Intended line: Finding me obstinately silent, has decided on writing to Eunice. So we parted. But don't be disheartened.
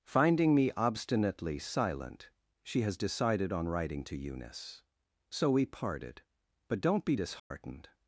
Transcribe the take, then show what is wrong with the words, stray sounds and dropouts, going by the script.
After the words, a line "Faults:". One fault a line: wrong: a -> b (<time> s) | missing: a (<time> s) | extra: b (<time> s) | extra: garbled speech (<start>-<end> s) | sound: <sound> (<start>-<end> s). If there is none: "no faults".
Finding me obstinately silent, she has decided on writing to Eunice. So we parted. But don't be disheartened.
Faults:
extra: she (2.6 s)
sound: dropout (7.4-7.5 s)